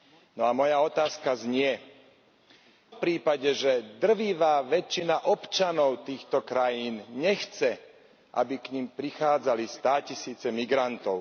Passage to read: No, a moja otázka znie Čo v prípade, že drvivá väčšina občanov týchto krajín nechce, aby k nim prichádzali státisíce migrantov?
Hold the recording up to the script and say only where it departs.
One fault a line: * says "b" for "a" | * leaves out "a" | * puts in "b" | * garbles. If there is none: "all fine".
* leaves out "Čo"